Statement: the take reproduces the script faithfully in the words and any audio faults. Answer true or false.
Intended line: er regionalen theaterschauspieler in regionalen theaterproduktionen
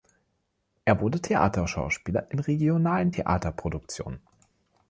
false